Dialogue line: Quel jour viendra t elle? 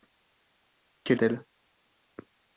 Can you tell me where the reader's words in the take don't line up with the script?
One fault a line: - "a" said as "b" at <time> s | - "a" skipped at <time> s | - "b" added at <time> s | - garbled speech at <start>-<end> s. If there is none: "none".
- "jour viendra" skipped at 1.2 s